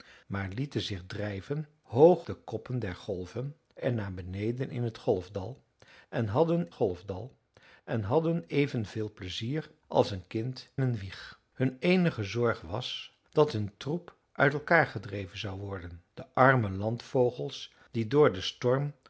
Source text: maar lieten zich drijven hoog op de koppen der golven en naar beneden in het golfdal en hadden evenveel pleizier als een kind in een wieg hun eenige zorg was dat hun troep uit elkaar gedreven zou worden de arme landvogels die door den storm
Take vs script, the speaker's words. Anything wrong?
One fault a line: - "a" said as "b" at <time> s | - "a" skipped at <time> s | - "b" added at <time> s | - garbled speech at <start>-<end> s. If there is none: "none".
- "op" skipped at 2.2 s
- "golfdal en hadden" added at 6.7 s
- "in" skipped at 10.7 s